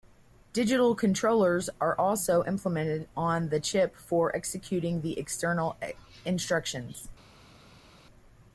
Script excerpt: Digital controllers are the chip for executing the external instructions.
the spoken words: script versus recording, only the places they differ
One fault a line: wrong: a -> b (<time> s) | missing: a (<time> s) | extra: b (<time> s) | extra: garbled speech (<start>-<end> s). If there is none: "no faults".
extra: also implemented on (1.9 s)